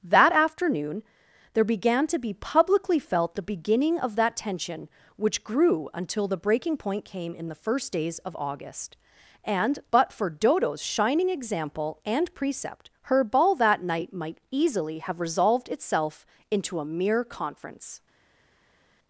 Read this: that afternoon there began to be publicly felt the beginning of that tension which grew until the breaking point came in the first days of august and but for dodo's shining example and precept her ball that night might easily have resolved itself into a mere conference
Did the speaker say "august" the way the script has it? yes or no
yes